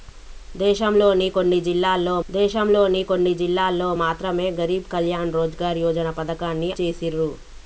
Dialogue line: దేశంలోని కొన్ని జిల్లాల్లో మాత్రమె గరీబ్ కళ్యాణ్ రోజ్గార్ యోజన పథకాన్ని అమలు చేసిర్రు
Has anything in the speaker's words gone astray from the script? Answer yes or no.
yes